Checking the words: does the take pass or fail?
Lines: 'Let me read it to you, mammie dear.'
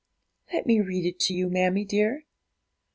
pass